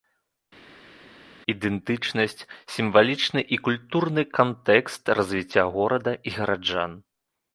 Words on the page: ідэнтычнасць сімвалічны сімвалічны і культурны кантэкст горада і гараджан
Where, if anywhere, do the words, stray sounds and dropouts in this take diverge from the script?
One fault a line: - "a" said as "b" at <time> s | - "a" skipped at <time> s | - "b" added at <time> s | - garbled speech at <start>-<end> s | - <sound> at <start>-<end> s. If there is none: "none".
- "сімвалічны" skipped at 3.4 s
- "развіцця" added at 5.2 s